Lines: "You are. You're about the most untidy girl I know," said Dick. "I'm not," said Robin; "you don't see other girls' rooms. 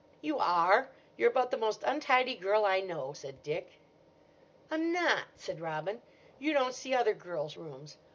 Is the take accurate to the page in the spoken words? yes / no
yes